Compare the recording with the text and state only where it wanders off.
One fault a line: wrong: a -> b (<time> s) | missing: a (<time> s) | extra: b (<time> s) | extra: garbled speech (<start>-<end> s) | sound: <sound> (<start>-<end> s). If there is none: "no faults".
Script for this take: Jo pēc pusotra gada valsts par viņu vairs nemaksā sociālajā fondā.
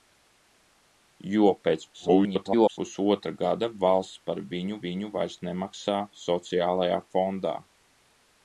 extra: garbled speech (1.9-2.8 s)
extra: viņu (4.9 s)